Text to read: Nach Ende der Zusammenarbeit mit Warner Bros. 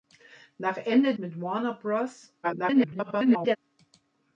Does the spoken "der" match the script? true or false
false